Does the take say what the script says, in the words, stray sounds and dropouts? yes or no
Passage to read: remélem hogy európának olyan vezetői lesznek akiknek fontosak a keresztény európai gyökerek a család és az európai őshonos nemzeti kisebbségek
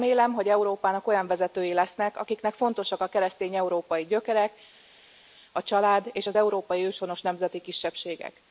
yes